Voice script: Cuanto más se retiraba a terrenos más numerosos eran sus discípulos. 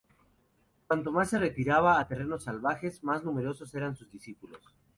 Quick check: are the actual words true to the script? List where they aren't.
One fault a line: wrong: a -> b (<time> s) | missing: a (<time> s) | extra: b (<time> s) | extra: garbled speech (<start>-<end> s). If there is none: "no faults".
extra: salvajes (2.4 s)